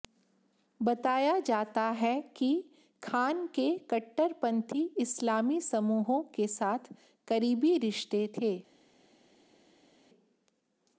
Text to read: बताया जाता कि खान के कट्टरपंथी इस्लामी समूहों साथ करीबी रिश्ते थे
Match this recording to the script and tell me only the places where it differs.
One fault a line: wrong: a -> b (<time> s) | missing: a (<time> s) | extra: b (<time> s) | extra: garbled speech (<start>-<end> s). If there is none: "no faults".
extra: है (2.0 s)
extra: के (6.3 s)